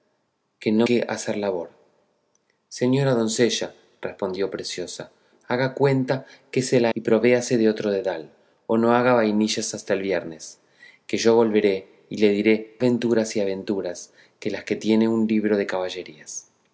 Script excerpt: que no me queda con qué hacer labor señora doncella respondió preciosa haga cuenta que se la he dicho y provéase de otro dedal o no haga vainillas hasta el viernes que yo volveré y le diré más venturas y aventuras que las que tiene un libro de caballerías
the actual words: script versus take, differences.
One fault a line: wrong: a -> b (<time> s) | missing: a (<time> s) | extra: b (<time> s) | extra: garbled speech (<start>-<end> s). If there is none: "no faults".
missing: me queda con (0.9 s)
missing: he dicho (6.9 s)
missing: más (12.8 s)